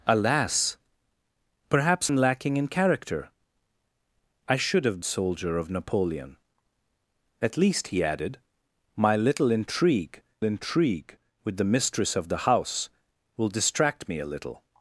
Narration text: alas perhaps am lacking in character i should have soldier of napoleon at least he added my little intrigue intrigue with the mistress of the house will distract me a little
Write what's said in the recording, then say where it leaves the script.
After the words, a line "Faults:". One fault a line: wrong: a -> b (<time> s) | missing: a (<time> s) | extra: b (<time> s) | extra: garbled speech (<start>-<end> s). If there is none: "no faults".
alas perhaps am lacking in character i should have soldier of napoleon at least he added my little intrigue intrigue with the mistress of the house will distract me a little
Faults:
no faults